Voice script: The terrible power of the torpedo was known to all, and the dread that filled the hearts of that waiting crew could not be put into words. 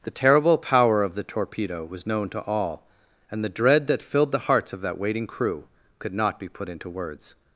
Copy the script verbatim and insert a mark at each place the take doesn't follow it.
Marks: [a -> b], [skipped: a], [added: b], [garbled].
The terrible power of the torpedo was known to all, and the dread that filled the hearts of that waiting crew could not be put into words.